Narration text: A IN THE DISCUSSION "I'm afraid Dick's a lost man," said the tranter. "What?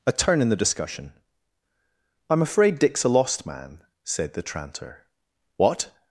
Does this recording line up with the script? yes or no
no